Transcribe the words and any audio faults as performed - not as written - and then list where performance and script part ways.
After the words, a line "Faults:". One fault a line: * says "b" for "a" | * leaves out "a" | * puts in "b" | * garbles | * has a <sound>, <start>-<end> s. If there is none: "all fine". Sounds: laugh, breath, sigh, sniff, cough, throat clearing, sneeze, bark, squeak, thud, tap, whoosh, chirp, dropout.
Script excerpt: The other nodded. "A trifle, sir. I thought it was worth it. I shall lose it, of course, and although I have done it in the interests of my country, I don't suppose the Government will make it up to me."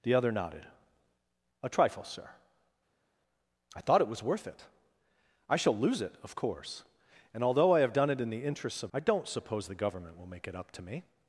The other nodded. "A trifle, sir. I thought it was worth it. I shall lose it, of course, and although I have done it in the interests of I don't suppose the Government will make it up to me."
Faults:
* leaves out "my country"